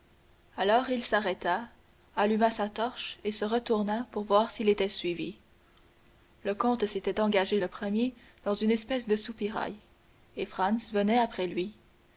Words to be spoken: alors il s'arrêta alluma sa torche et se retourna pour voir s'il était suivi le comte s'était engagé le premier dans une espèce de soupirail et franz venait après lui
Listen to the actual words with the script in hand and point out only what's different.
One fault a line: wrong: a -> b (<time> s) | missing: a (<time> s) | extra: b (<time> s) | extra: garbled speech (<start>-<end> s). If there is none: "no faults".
no faults